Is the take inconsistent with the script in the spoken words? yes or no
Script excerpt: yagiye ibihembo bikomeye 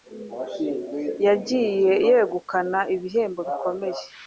yes